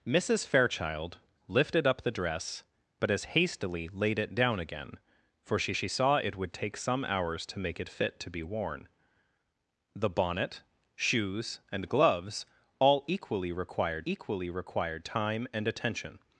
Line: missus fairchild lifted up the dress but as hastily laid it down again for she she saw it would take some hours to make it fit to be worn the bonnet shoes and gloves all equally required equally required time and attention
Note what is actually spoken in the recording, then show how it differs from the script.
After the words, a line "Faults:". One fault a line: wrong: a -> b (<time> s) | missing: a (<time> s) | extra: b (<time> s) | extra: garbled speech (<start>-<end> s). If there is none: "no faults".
missus fairchild lifted up the dress but as hastily laid it down again for she she saw it would take some hours to make it fit to be worn the bonnet shoes and gloves all equally required equally required time and attention
Faults:
no faults